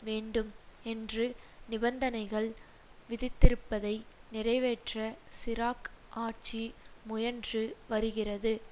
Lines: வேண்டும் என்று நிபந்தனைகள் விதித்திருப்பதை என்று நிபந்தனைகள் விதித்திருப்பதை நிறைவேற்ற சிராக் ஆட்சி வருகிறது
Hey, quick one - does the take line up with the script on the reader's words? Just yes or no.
no